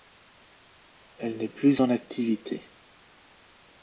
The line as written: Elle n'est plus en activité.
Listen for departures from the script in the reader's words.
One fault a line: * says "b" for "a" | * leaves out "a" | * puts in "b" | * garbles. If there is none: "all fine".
all fine